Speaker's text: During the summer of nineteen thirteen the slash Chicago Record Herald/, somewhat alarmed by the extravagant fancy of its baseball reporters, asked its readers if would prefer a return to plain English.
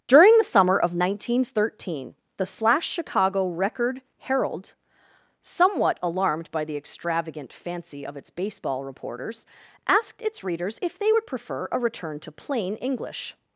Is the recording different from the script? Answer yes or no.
yes